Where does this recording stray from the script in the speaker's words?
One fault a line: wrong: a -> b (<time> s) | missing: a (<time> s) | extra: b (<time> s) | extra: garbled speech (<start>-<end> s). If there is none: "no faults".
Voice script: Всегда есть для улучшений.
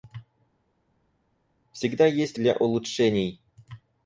no faults